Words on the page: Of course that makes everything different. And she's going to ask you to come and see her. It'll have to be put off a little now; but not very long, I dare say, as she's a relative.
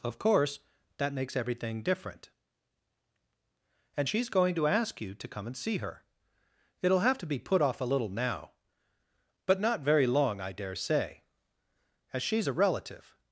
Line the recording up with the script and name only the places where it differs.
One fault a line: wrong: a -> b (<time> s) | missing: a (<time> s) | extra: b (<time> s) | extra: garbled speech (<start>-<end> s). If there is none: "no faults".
no faults